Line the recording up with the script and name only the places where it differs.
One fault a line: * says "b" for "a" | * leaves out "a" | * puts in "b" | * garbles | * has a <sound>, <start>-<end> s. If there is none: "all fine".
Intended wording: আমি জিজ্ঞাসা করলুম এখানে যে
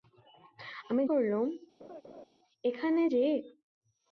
* leaves out "জিজ্ঞাসা"
* has a laugh, 1.8-2.3 s